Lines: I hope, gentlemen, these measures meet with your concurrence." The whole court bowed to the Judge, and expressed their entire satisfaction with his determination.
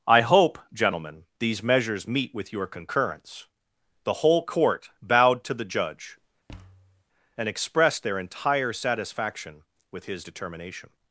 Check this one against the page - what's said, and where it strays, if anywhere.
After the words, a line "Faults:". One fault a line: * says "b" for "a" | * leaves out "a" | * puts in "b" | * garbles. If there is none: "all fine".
I hope, gentlemen, these measures meet with your concurrence." The whole court bowed to the Judge, and expressed their entire satisfaction with his determination.
Faults:
all fine